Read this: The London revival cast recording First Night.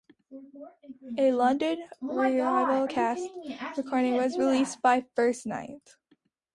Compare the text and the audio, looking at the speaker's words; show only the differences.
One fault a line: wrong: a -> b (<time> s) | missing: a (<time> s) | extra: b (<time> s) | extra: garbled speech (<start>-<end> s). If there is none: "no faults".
wrong: The -> A (1.2 s)
extra: was released by (4.1 s)